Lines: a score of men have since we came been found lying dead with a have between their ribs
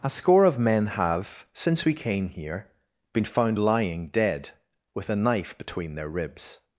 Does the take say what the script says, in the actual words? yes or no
no